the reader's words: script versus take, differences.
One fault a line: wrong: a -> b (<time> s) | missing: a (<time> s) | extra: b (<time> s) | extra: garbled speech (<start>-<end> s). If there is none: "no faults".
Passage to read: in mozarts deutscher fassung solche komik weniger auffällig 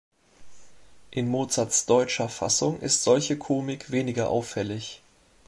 extra: ist (2.8 s)